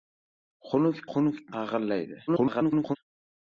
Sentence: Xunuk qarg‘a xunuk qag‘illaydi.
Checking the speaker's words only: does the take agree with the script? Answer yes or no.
no